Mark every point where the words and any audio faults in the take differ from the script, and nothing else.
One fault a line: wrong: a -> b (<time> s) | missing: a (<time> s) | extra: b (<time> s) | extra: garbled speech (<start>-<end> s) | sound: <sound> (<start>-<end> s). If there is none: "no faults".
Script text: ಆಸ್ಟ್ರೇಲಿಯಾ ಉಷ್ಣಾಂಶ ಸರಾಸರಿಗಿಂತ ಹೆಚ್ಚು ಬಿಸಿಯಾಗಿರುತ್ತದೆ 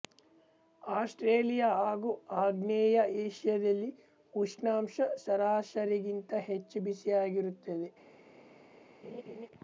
extra: ಹಾಗೂ ಆಗ್ನೇಯ ಏಷ್ಯಾದಲ್ಲಿ (1.8 s)
sound: laugh (9.0-9.5 s)